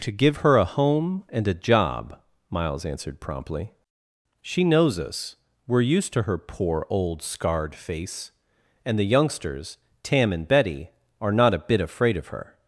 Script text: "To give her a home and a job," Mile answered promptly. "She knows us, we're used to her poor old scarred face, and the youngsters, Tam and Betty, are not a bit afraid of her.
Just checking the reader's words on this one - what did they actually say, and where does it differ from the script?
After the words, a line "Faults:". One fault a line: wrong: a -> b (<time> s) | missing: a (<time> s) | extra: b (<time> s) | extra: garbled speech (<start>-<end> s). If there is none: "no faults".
"To give her a home and a job," Miles answered promptly. "She knows us, we're used to her poor old scarred face, and the youngsters, Tam and Betty, are not a bit afraid of her.
Faults:
wrong: Mile -> Miles (2.5 s)